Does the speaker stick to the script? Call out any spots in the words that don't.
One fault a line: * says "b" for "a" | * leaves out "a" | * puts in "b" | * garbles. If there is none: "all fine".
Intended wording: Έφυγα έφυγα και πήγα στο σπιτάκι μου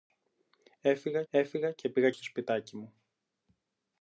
all fine